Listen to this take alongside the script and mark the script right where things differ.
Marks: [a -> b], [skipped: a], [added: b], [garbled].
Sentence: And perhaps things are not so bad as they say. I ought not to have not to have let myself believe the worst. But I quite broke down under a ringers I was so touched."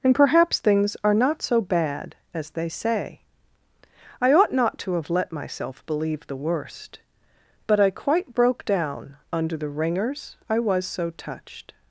And perhaps things are not so bad as they say. I ought not to have [skipped: not to have] let myself believe the worst. But I quite broke down under [a -> the] ringers I was so touched."